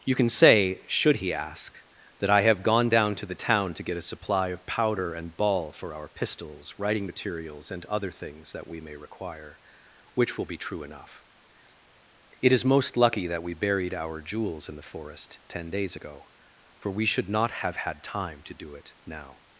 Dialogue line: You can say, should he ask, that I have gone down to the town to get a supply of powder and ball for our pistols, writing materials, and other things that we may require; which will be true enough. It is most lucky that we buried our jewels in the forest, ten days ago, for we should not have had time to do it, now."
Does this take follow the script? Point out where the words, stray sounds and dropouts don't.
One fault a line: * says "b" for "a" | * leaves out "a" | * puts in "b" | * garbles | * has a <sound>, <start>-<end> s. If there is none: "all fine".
all fine